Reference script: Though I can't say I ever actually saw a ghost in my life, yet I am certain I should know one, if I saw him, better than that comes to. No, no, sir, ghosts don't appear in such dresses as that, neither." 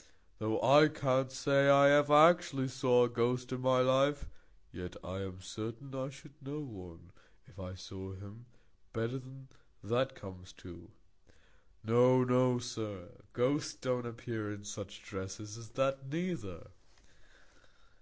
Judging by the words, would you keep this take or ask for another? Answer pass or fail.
pass